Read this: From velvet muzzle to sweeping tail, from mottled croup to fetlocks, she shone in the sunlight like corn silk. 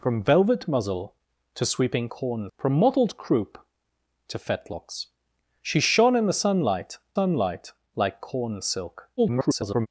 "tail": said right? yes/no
no